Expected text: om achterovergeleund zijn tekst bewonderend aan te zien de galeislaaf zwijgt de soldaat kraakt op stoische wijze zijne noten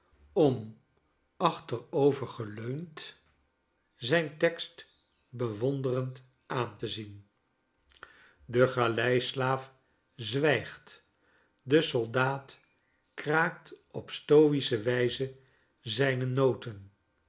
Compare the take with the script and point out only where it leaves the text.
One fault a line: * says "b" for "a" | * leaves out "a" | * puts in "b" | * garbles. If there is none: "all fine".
all fine